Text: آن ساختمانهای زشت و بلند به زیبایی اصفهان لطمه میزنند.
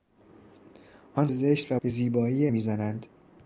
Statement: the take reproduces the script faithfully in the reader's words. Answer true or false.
false